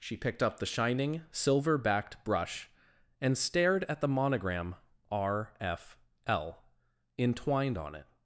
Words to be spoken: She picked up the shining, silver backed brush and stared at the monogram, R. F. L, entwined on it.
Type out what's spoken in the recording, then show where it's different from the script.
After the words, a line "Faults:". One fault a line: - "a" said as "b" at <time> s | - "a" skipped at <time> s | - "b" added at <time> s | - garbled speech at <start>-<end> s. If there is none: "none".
She picked up the shining, silver backed brush and stared at the monogram, R. F. L, entwined on it.
Faults:
none